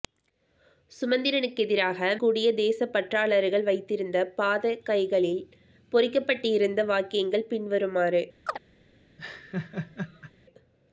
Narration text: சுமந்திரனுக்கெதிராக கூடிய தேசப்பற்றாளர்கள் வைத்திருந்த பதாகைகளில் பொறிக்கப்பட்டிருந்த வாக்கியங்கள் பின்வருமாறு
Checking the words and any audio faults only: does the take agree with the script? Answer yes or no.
no